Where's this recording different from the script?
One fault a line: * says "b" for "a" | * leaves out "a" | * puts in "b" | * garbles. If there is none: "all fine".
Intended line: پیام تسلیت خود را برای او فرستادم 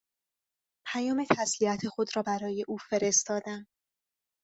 all fine